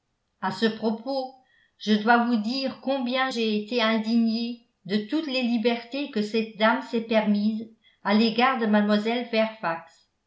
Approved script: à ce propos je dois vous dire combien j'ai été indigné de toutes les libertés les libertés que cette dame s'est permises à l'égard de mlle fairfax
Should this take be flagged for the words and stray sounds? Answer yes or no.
yes